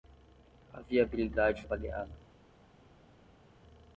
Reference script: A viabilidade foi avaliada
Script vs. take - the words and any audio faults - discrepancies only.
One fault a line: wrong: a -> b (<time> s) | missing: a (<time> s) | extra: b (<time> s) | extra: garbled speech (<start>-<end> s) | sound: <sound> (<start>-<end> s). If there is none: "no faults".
missing: foi (1.6 s)